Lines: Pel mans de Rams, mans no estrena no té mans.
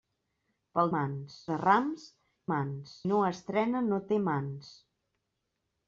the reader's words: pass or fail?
pass